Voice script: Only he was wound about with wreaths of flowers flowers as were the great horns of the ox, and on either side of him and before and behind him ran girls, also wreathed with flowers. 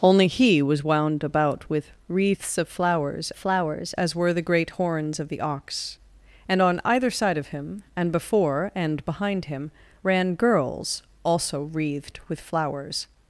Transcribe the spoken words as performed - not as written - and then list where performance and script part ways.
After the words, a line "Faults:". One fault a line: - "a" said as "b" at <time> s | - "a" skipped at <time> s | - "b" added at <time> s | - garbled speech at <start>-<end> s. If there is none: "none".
Only he was wound about with wreaths of flowers flowers as were the great horns of the ox, and on either side of him and before and behind him ran girls, also wreathed with flowers.
Faults:
none